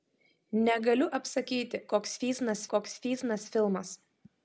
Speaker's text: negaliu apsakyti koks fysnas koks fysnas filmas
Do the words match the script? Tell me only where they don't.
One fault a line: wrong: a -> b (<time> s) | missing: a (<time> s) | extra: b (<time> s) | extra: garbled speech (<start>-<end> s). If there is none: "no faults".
no faults